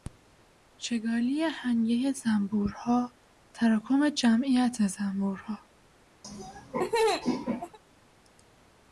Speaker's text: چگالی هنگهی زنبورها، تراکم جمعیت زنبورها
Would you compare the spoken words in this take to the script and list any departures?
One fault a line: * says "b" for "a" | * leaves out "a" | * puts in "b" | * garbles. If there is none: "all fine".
all fine